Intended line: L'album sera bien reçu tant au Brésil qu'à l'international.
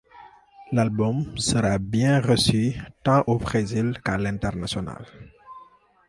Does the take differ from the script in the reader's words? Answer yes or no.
no